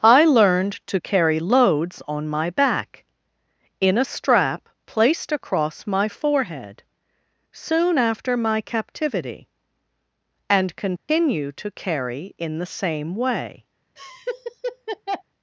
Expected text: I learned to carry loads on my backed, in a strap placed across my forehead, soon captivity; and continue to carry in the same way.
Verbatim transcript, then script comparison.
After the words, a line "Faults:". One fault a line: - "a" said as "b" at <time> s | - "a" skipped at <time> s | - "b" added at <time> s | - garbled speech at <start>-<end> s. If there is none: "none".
I learned to carry loads on my back, in a strap placed across my forehead, soon after my captivity; and continue to carry in the same way.
Faults:
- "backed" said as "back" at 2.5 s
- "after my" added at 8.0 s